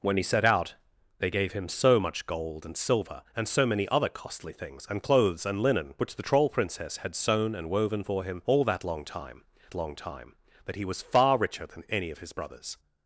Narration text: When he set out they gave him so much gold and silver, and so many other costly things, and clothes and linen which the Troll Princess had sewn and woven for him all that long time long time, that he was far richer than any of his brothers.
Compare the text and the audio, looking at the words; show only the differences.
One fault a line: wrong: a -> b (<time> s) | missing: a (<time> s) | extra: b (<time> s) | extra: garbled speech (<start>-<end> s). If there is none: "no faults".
no faults